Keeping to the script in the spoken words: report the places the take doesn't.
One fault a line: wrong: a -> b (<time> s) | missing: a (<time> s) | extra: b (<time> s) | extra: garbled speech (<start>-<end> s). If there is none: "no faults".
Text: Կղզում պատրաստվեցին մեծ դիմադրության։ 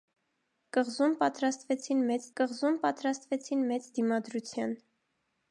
extra: կղզում պատրաստվեցին մեծ (2.4 s)